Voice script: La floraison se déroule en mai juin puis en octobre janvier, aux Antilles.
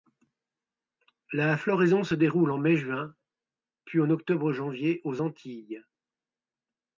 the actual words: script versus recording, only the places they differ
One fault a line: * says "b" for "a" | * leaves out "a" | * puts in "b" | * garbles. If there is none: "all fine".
all fine